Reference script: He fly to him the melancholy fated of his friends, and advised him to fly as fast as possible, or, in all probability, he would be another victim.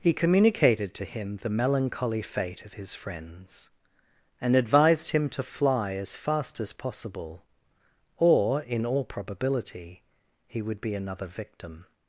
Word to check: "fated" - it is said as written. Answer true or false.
false